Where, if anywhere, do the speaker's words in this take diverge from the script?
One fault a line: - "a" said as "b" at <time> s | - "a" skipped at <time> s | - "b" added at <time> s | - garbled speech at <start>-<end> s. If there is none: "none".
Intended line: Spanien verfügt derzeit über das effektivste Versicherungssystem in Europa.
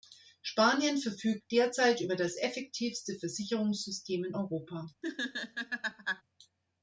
none